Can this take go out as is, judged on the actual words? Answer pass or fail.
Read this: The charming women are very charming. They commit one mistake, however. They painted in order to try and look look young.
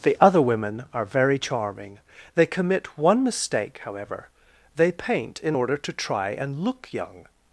fail